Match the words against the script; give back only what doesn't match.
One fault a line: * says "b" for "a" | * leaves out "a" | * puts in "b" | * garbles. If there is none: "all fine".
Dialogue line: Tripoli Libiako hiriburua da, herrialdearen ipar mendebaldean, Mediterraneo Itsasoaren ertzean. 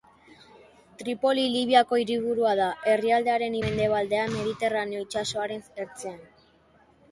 * leaves out "ipar"